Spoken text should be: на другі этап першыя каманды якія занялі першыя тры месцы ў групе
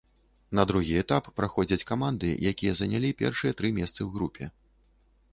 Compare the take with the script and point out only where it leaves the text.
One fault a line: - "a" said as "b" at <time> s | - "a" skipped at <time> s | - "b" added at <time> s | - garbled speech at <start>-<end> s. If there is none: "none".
- "першыя" said as "праходзяць" at 1.4 s